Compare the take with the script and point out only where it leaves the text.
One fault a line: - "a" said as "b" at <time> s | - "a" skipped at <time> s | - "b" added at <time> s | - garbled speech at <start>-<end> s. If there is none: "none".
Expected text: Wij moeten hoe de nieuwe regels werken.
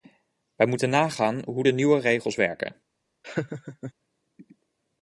- "nagaan" added at 0.9 s